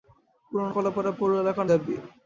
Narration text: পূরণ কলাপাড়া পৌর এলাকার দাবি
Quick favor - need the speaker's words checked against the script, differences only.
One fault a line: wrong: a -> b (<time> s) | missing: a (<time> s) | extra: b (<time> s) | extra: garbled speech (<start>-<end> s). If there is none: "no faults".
no faults